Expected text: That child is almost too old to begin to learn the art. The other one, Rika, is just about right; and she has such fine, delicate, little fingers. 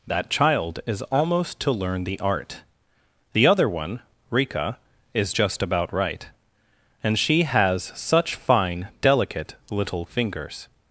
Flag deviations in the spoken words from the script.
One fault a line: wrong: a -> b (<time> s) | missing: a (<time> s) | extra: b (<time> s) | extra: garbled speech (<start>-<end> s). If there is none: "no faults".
missing: too old to begin (1.6 s)